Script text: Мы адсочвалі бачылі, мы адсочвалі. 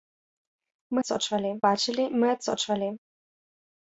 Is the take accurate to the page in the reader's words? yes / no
yes